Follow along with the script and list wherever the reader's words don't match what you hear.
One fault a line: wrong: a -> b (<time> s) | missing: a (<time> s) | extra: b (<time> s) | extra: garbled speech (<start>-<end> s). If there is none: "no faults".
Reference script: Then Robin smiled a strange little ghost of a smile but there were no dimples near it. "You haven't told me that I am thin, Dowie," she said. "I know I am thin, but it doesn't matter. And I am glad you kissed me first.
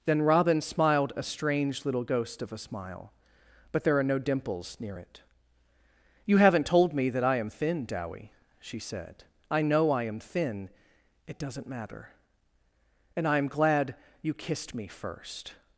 wrong: were -> are (4.0 s)
missing: but (10.7 s)